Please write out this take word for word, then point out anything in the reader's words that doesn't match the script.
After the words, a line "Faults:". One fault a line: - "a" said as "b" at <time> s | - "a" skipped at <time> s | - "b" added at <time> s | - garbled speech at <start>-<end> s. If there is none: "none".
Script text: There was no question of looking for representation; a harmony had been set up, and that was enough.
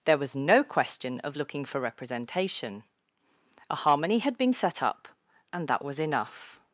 There was no question of looking for representation; a harmony had been set up, and that was enough.
Faults:
none